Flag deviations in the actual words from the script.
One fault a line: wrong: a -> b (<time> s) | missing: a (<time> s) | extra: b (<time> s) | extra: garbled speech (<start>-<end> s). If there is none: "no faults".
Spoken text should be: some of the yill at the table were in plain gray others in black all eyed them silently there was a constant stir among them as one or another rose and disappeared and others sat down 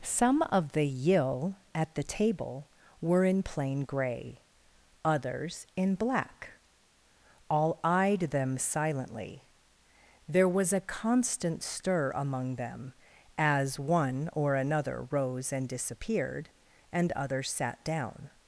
no faults